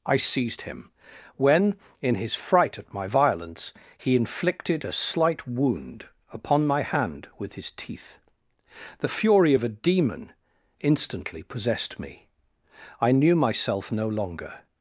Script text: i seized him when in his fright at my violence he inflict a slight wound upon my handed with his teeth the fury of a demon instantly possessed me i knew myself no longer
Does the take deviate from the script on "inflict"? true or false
true